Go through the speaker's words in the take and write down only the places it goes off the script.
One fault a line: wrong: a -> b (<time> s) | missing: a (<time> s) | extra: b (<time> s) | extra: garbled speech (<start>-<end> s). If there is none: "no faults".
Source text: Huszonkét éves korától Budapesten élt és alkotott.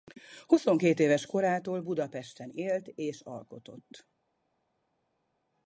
no faults